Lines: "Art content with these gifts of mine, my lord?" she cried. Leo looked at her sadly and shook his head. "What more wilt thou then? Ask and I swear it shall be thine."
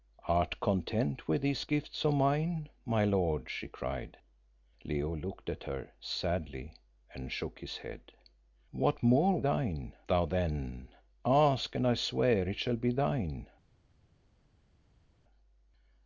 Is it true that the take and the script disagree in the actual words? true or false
true